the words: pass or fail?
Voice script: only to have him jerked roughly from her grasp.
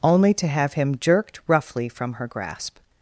pass